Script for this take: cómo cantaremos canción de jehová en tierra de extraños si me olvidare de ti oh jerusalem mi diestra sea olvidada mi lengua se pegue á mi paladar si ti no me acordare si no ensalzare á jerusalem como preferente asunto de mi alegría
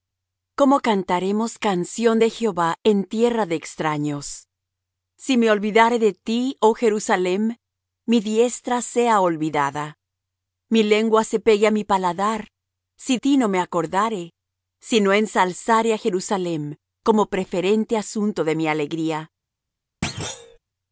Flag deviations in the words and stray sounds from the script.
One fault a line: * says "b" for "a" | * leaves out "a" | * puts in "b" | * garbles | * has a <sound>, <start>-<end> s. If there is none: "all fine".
* has a thud, 20.0-20.6 s